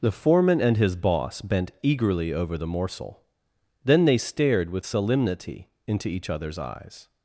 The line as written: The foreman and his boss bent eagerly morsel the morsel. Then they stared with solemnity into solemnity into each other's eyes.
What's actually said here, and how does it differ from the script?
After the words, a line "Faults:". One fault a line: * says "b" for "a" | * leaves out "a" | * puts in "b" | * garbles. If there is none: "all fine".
The foreman and his boss bent eagerly over the morsel. Then they stared with solemnity into each other's eyes.
Faults:
* says "over" for "morsel"
* leaves out "solemnity into"